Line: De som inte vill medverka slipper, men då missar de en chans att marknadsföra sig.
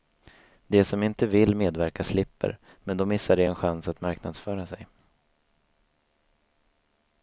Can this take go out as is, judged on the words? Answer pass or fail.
pass